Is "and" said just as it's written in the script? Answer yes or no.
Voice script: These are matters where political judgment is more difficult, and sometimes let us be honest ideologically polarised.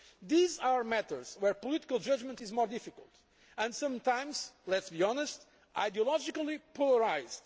yes